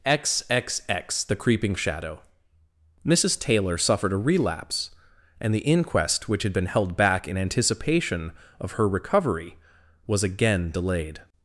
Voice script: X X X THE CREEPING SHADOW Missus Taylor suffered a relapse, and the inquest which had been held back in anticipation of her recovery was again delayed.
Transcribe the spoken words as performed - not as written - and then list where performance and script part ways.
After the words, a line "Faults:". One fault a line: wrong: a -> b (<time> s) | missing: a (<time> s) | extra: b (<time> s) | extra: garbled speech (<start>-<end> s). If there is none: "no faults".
X X X THE CREEPING SHADOW Missus Taylor suffered a relapse, and the inquest which had been held back in anticipation of her recovery was again delayed.
Faults:
no faults